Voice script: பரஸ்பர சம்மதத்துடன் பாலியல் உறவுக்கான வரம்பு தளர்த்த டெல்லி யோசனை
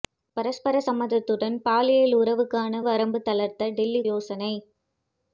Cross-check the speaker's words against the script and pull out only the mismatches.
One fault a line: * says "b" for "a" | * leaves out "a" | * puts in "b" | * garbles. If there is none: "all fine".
all fine